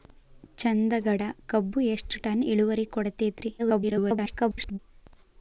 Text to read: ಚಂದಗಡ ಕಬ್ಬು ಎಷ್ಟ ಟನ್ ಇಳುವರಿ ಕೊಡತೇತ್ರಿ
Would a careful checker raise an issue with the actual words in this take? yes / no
yes